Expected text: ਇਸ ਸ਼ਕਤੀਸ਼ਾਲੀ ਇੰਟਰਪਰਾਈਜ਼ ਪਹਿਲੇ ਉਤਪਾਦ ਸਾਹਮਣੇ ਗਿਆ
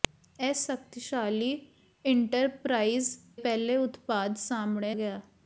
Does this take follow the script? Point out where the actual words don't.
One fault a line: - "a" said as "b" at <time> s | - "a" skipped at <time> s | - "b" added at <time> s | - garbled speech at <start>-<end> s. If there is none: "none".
none